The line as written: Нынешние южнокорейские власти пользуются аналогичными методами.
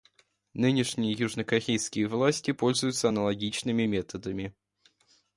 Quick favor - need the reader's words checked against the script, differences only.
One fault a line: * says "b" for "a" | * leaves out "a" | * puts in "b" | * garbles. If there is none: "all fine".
all fine